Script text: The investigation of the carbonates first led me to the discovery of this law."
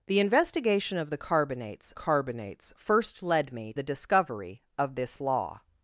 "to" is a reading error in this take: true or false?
true